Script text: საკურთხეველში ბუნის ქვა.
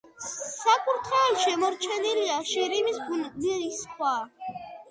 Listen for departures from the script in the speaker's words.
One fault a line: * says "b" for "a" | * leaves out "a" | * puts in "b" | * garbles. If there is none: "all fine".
* puts in "შემორჩენილია შირიმის"